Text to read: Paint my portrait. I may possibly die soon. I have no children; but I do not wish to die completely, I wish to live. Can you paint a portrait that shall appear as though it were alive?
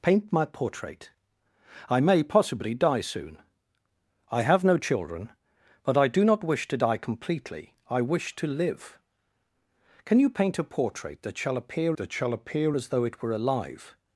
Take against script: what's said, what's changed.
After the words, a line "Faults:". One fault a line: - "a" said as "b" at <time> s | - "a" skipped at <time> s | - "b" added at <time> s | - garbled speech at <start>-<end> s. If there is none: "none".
Paint my portrait. I may possibly die soon. I have no children; but I do not wish to die completely, I wish to live. Can you paint a portrait that shall appear that shall appear as though it were alive?
Faults:
- "that shall appear" added at 12.0 s